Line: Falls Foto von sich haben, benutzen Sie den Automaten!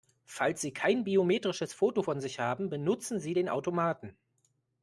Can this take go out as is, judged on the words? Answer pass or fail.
fail